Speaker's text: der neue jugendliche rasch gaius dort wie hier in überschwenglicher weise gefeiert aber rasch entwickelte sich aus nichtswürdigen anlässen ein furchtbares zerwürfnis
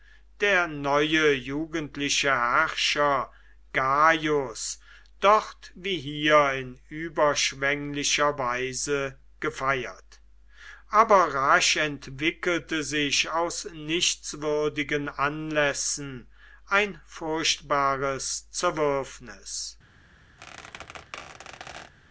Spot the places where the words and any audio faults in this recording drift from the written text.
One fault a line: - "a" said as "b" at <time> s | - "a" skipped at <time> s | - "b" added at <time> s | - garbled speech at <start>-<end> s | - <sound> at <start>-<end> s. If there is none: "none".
- "rasch" said as "herrscher" at 2.3 s
- squeak at 20.4-21.9 s